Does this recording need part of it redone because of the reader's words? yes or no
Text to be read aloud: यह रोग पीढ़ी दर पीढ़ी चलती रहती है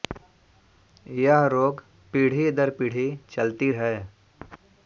yes